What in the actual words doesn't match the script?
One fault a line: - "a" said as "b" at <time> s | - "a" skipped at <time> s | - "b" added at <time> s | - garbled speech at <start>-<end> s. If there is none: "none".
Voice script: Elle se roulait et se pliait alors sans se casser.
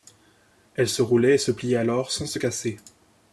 none